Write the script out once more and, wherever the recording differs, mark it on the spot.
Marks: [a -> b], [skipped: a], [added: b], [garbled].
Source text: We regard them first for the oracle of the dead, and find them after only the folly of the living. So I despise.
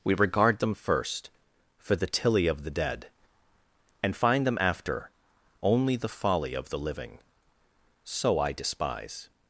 We regard them first for the [oracle -> tilly] of the dead, and find them after only the folly of the living. So I despise.